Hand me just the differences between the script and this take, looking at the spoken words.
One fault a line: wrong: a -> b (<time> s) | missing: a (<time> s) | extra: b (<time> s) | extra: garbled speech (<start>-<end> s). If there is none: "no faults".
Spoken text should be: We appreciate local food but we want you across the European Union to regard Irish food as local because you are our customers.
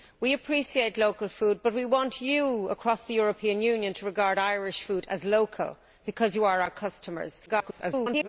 extra: garbled speech (7.5-8.3 s)